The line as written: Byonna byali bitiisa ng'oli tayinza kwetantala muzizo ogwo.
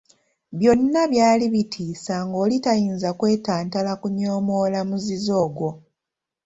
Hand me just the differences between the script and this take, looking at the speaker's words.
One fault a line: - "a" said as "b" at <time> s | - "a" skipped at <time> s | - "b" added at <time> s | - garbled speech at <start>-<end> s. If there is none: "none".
- "kunyoomoola" added at 4.0 s